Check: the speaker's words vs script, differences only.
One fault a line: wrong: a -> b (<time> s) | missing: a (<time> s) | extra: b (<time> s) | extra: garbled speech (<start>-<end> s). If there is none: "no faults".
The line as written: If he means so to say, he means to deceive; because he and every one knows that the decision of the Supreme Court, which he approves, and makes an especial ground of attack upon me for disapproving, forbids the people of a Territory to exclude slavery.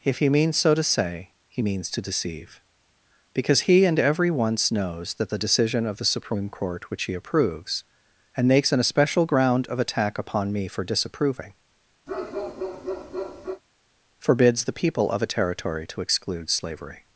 wrong: one -> once (4.3 s)